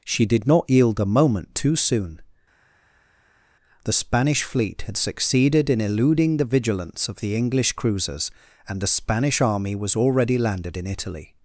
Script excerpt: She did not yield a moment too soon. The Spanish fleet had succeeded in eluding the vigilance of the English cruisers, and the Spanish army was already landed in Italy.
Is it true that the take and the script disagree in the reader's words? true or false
false